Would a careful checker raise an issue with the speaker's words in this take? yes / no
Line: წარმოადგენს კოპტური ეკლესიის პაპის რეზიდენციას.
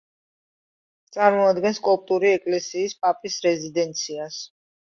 no